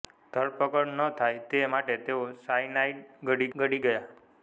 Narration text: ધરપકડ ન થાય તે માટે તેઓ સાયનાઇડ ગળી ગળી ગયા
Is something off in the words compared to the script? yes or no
no